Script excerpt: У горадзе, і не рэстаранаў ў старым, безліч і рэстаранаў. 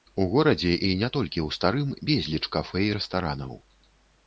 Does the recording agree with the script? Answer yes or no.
no